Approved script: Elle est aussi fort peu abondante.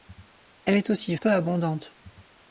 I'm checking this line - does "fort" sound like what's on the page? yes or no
no